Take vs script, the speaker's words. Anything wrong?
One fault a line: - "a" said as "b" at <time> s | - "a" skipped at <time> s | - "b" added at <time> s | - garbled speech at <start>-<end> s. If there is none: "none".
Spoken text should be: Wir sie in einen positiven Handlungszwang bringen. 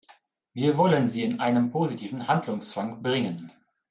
- "wollen" added at 0.8 s